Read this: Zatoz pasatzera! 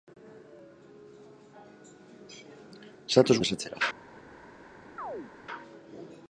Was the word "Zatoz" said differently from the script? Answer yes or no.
no